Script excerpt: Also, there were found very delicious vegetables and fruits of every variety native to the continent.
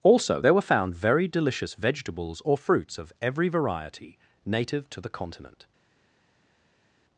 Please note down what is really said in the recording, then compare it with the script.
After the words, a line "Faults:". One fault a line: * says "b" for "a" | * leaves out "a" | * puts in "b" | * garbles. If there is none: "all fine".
Also, there were found very delicious vegetables or fruits of every variety native to the continent.
Faults:
* says "or" for "and"